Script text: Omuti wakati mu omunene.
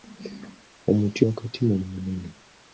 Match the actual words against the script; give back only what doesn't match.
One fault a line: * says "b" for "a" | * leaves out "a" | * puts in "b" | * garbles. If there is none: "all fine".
all fine